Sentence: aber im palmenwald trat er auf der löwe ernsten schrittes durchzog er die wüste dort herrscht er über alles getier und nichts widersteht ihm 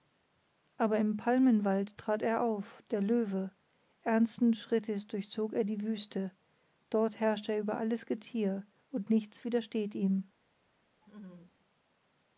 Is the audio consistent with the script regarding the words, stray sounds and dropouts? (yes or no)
no